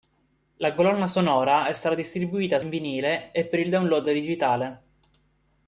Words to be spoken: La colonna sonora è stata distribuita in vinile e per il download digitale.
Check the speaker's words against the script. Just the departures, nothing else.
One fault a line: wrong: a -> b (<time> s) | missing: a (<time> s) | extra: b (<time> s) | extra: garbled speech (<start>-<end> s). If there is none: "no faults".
no faults